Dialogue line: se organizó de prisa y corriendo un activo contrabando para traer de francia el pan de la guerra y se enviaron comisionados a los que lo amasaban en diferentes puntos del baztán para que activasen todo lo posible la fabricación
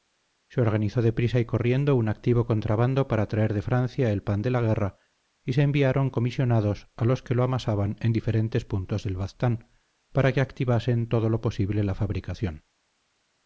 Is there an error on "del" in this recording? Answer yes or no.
no